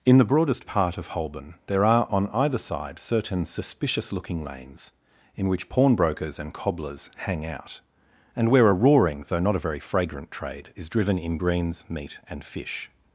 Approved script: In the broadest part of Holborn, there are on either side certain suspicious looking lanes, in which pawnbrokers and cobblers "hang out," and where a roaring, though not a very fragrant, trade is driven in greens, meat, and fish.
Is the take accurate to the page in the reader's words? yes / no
yes